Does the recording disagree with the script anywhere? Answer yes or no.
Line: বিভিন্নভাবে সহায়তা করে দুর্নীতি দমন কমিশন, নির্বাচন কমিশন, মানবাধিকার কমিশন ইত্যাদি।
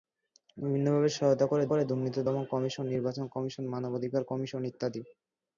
yes